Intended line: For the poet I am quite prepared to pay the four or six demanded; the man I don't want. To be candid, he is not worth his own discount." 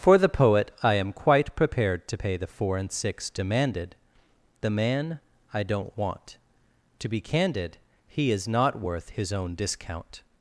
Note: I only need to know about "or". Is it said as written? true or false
false